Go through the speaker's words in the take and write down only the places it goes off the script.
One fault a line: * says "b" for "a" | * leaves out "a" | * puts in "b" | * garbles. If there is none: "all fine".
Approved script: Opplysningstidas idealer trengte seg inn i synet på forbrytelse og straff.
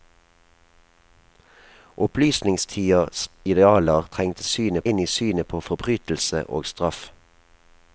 * says "synet" for "seg"